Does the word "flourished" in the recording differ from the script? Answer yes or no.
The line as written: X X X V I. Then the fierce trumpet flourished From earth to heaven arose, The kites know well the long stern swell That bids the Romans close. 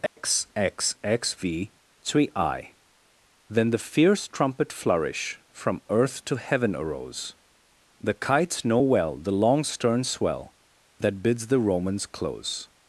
yes